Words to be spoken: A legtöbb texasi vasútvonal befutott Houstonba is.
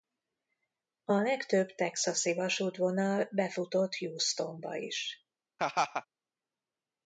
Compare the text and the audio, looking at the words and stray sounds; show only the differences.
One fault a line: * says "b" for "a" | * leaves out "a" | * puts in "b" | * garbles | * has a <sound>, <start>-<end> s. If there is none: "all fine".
* has a laugh, 5.6-6.1 s